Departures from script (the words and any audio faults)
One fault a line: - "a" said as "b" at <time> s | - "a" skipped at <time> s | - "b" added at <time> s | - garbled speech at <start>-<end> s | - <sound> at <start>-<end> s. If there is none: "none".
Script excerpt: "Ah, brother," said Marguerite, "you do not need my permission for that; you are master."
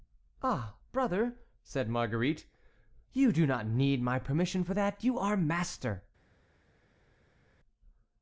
none